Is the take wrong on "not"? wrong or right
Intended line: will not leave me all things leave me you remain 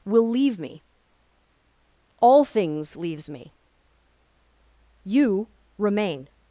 wrong